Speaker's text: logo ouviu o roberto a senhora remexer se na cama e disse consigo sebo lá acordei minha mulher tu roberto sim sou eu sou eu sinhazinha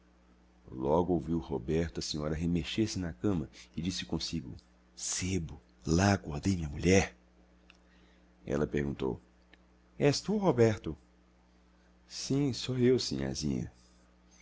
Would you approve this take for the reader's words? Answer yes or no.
no